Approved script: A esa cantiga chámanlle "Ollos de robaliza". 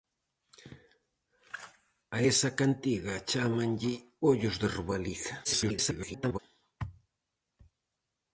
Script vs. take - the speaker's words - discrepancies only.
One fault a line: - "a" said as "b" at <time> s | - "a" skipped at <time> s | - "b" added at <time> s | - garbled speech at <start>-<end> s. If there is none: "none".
- garbled speech at 5.4-6.4 s